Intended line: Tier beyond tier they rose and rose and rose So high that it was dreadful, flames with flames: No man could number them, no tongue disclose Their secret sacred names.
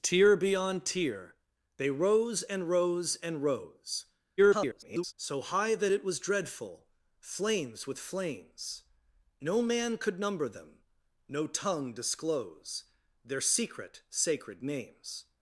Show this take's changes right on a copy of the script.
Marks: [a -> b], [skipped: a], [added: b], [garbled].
Tier beyond tier they rose and rose and rose [garbled] So high that it was dreadful, flames with flames: No man could number them, no tongue disclose Their secret sacred names.